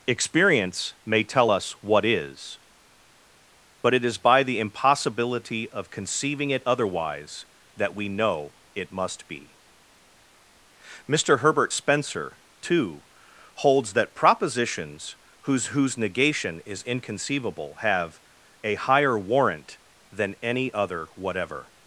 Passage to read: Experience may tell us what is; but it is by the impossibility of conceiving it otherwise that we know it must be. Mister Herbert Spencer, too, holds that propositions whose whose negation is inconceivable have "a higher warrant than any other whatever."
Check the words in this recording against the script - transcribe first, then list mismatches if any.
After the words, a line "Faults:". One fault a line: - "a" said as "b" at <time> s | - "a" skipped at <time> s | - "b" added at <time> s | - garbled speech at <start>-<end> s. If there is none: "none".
Experience may tell us what is; but it is by the impossibility of conceiving it otherwise that we know it must be. Mister Herbert Spencer, too, holds that propositions whose whose negation is inconceivable have "a higher warrant than any other whatever."
Faults:
none